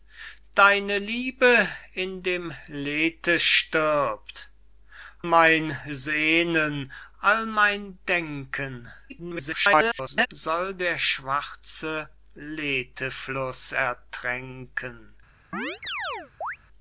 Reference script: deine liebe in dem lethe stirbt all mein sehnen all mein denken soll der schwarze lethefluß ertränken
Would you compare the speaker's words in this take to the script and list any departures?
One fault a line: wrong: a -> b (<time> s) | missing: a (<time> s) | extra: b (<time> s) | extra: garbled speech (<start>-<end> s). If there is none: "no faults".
missing: all (4.5 s)
extra: garbled speech (9.1-10.3 s)